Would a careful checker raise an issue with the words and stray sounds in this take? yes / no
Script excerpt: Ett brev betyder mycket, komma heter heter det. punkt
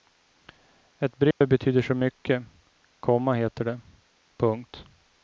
yes